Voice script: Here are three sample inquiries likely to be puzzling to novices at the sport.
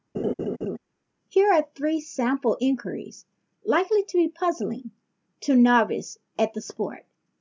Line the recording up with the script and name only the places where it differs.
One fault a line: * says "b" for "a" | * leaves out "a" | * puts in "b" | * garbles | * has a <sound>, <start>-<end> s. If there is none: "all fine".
* has a laugh, 0.1-0.8 s